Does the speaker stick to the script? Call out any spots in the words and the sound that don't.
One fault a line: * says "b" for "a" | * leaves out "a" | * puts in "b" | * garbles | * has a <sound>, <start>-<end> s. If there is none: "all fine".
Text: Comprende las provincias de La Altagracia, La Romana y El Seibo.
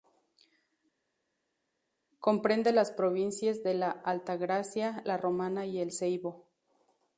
all fine